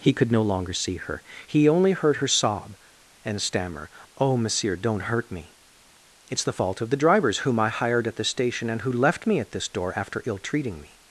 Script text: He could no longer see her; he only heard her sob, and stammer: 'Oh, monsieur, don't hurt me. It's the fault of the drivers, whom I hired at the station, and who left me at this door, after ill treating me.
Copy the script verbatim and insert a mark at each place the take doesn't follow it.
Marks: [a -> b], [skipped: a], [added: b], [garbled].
He could no longer see her; he only heard her sob, and stammer: 'Oh, monsieur, don't hurt me. It's the fault of the drivers, whom I hired at the station, and who left me at this door, after ill treating me.